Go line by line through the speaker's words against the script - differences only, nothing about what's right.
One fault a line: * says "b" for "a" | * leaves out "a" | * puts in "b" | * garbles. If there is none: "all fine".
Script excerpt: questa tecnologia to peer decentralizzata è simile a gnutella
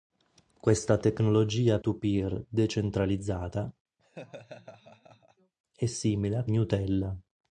all fine